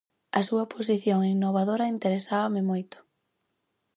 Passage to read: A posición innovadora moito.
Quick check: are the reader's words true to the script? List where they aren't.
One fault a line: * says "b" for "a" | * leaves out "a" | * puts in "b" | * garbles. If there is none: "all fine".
* puts in "súa"
* puts in "interesábame"